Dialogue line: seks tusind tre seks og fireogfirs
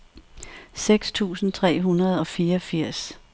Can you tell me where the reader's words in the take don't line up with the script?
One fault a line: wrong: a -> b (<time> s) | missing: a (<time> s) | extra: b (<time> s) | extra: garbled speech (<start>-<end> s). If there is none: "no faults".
wrong: seks -> hundrede (1.8 s)